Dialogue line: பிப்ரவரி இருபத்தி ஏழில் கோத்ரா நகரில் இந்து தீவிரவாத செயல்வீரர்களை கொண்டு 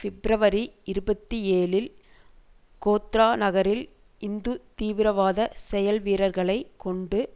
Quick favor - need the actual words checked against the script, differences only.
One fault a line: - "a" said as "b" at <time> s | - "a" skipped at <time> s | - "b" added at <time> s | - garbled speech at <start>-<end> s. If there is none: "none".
none